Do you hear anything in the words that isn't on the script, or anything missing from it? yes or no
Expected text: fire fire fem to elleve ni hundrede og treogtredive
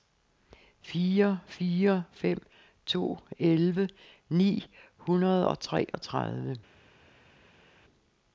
no